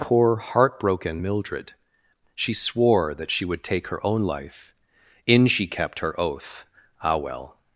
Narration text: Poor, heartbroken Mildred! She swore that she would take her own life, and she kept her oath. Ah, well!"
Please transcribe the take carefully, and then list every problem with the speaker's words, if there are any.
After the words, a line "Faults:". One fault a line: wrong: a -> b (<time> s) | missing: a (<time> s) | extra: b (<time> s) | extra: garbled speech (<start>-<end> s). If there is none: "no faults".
Poor, heartbroken Mildred! She swore that she would take her own life, in she kept her oath. Ah, well!"
Faults:
wrong: and -> in (5.2 s)